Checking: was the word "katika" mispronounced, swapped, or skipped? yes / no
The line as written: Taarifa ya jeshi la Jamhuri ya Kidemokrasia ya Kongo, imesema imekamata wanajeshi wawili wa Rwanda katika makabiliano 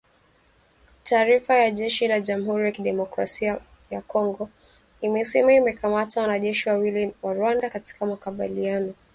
no